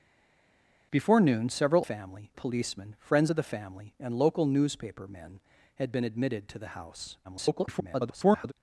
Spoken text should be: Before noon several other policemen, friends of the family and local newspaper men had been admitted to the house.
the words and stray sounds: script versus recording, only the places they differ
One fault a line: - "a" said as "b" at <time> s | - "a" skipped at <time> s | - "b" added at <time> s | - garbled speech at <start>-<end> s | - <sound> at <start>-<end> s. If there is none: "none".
- "other" said as "family" at 1.8 s
- garbled speech at 7.2-8.5 s